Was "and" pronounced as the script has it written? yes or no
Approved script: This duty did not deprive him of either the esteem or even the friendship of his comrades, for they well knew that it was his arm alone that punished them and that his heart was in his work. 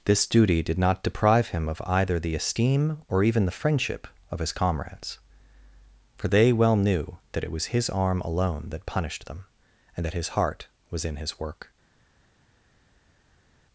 yes